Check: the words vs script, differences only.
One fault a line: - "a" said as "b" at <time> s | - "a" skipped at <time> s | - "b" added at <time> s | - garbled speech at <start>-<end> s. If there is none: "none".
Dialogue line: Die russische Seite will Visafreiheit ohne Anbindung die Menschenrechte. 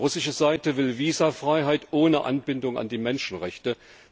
- "an" added at 2.8 s